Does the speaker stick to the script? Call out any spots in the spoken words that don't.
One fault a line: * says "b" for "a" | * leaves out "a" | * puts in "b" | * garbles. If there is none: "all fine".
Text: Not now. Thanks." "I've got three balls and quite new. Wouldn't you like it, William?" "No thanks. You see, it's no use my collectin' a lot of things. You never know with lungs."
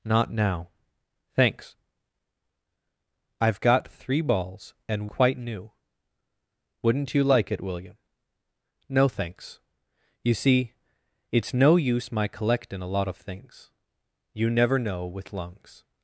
all fine